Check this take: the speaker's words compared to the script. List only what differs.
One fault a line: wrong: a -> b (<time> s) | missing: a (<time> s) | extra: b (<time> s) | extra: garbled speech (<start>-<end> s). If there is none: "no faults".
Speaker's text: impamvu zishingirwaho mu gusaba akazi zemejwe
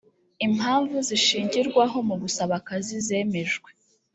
no faults